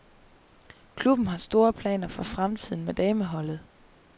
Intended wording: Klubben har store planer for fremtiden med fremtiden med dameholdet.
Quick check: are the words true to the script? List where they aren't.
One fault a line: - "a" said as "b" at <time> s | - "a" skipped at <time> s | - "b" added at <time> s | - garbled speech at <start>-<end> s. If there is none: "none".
- "fremtiden med" skipped at 2.9 s